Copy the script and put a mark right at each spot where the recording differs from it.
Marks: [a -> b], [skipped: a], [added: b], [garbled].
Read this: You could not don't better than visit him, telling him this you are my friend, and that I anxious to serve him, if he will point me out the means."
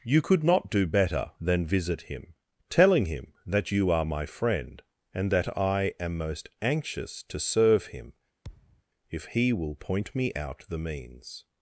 You could not [don't -> do] better than visit him, telling him [this -> that] you are my friend, and that I [added: am most] anxious to serve him, if he will point me out the means."